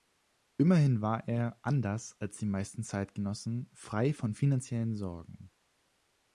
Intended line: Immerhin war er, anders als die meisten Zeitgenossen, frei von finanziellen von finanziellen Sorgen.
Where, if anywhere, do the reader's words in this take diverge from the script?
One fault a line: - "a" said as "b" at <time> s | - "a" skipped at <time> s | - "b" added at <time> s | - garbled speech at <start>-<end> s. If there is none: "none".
- "von finanziellen" skipped at 5.0 s